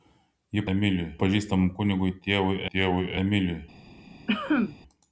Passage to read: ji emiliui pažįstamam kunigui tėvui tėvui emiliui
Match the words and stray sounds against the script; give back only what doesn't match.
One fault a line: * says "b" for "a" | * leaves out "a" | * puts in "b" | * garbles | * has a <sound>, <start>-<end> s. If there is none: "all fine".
* has a cough, 4.3-4.8 s